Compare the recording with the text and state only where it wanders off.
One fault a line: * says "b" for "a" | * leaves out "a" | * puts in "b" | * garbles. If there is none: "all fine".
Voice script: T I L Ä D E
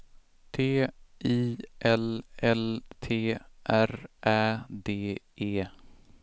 * puts in "L T R"